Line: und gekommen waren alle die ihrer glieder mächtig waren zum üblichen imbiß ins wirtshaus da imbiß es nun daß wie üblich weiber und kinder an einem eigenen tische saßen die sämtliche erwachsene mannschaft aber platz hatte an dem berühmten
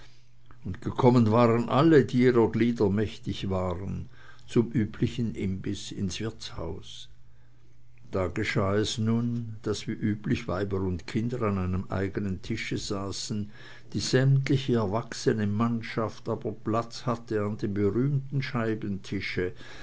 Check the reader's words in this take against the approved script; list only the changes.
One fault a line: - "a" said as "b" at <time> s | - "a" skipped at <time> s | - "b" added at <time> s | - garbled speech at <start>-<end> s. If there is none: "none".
- "imbiß" said as "geschah" at 8.3 s